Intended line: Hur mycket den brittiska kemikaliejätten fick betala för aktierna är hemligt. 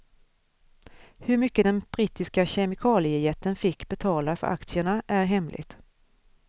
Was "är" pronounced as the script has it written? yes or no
yes